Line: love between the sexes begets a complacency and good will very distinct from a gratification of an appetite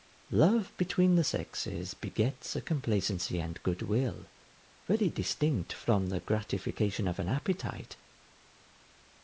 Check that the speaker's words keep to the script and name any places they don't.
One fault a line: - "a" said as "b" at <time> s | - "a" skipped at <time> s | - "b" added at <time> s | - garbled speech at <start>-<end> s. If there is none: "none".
- "a" said as "the" at 6.1 s